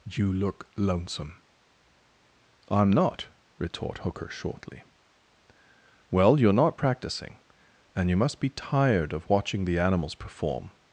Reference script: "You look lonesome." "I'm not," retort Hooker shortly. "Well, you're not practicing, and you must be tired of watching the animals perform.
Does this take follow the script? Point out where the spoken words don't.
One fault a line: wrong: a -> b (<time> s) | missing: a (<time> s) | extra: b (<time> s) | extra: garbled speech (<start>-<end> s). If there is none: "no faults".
no faults